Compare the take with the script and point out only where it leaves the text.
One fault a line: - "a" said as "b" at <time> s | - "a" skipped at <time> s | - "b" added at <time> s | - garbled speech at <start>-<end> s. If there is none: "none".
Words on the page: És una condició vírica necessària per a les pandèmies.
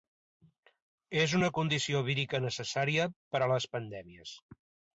none